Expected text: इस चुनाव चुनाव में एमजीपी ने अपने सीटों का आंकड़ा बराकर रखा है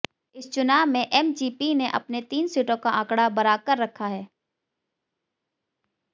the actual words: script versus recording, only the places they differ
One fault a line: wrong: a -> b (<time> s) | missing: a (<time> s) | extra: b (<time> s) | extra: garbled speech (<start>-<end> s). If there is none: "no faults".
missing: चुनाव (0.8 s)
extra: तीन (2.2 s)